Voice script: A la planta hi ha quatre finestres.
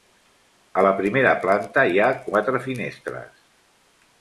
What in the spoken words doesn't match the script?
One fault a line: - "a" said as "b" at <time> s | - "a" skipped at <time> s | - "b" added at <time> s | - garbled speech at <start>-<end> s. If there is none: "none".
- "primera" added at 1.0 s